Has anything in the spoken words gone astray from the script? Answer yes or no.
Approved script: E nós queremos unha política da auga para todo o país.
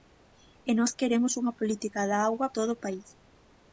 yes